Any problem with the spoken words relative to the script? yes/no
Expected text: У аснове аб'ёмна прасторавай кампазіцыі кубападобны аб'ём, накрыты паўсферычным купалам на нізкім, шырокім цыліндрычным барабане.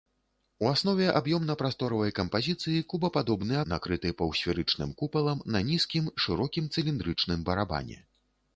yes